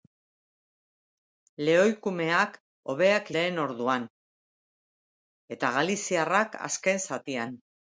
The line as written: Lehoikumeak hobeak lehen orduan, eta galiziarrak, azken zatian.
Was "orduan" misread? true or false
false